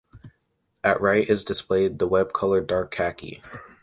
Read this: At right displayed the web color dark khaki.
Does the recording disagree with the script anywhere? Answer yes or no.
yes